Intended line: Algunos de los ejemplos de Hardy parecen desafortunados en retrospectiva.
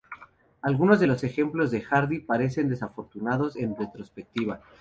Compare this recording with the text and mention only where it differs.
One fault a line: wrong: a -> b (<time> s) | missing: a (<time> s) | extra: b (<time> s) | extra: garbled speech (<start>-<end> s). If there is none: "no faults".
no faults